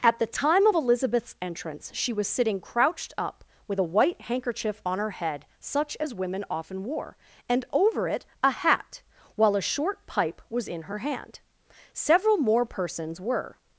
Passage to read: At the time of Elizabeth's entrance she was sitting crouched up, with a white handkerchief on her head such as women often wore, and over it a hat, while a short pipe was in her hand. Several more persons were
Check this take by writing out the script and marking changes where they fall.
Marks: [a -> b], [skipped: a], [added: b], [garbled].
At the time of Elizabeth's entrance she was sitting crouched up, with a white handkerchief on her head such as women often wore, and over it a hat, while a short pipe was in her hand. Several more persons were